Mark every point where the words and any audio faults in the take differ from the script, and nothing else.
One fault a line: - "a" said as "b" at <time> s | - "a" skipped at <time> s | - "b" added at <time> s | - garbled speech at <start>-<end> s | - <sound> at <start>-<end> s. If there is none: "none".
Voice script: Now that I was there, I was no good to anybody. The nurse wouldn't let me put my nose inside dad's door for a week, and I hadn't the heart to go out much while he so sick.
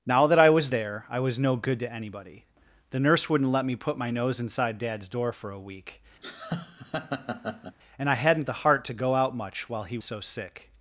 - laugh at 6.2-7.8 s